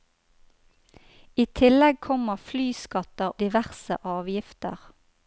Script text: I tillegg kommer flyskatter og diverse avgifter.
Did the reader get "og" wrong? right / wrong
wrong